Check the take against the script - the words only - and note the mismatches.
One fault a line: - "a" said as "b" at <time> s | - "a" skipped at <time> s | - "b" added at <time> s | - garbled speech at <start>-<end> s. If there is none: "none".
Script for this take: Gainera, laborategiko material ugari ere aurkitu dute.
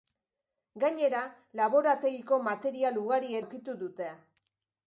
- "ere" skipped at 3.4 s